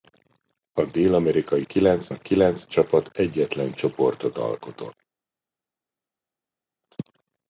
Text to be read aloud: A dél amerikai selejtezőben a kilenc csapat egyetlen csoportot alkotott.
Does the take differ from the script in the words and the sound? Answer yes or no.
yes